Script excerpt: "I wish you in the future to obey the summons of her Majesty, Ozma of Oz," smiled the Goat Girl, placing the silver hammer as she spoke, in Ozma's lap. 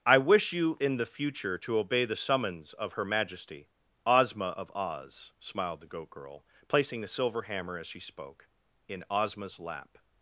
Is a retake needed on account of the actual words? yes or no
no